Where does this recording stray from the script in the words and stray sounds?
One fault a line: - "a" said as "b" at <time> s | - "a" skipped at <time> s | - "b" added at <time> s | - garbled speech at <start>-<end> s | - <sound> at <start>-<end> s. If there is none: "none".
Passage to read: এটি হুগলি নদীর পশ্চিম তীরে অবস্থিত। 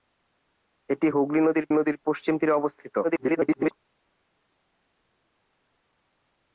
- "নদীর" added at 1.7 s
- garbled speech at 3.0-3.7 s